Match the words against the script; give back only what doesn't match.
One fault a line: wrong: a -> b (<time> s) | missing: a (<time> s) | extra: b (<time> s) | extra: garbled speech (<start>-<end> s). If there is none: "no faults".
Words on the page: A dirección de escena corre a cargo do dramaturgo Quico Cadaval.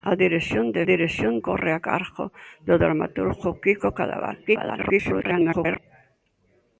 wrong: escena -> dirección (0.8 s)
extra: garbled speech (4.5-5.8 s)